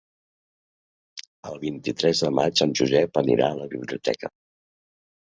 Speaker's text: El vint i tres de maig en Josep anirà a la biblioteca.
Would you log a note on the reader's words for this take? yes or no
no